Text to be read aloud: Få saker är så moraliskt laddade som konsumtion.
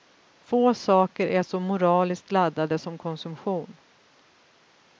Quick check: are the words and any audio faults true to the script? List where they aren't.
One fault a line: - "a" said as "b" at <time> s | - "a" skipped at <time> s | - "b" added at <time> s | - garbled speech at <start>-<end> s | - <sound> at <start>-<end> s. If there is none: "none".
none